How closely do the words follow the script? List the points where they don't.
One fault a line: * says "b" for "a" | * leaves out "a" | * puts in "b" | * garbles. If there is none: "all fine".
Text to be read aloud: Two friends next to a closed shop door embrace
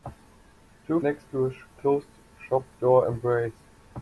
* leaves out "friends"